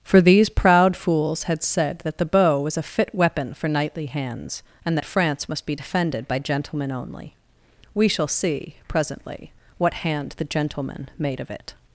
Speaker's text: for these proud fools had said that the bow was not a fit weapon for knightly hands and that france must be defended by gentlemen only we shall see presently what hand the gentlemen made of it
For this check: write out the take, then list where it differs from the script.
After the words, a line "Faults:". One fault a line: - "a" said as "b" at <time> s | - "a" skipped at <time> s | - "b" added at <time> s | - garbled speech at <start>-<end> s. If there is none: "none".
for these proud fools had said that the bow was a fit weapon for knightly hands and that france must be defended by gentlemen only we shall see presently what hand the gentlemen made of it
Faults:
- "not" skipped at 2.8 s